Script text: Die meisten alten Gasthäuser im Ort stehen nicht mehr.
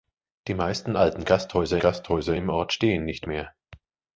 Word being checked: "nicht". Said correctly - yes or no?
yes